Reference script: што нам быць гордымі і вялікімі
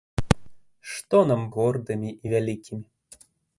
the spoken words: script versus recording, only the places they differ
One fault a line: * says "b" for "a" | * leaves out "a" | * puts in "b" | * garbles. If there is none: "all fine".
* leaves out "быць"